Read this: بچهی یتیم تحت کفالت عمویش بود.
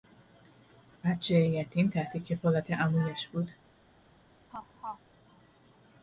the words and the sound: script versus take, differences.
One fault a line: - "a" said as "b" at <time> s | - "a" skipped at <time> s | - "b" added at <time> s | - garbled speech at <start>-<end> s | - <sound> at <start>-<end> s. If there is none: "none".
- laugh at 4.5-5.0 s